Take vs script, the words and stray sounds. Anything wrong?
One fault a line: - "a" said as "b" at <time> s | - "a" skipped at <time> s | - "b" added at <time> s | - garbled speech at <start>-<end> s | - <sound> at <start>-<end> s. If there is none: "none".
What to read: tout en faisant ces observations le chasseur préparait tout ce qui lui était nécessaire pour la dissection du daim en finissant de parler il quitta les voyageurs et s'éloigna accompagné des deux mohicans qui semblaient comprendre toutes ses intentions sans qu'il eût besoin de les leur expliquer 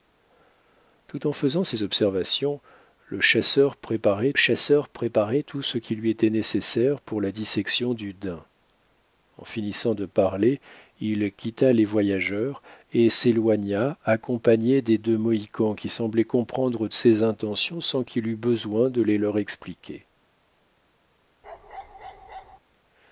- "chasseur préparait" added at 4.4 s
- "toutes" skipped at 16.9 s
- bark at 21.4-22.6 s